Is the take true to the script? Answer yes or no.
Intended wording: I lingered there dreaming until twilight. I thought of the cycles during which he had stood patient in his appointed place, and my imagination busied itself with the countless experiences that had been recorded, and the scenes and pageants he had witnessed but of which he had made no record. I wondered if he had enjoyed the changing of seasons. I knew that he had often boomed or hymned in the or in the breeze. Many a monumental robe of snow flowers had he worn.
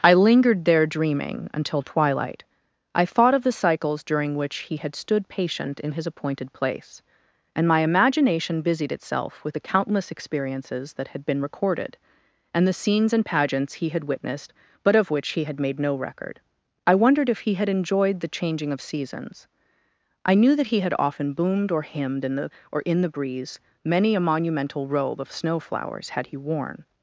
yes